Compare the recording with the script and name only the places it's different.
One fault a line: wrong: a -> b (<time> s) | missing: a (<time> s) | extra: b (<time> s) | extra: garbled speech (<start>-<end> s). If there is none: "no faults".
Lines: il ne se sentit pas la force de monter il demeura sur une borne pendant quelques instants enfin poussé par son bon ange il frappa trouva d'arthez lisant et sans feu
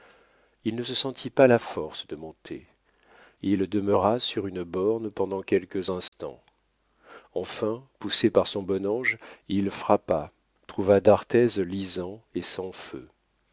no faults